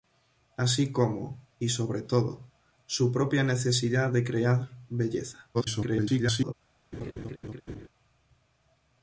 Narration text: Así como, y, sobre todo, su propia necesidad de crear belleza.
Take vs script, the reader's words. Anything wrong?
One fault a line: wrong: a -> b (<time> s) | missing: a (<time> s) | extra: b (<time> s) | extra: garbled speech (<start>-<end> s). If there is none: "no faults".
extra: garbled speech (5.5-6.5 s)